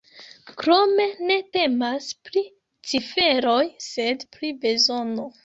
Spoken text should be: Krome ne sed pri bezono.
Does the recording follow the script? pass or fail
fail